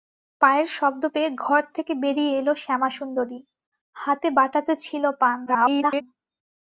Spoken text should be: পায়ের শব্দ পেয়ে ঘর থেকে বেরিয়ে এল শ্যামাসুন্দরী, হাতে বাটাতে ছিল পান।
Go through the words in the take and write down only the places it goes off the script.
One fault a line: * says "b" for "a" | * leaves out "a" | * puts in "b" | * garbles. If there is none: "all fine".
* garbles